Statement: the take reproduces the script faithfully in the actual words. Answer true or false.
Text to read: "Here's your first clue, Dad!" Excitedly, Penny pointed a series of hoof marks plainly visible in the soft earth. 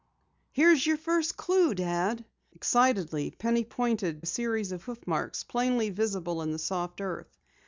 true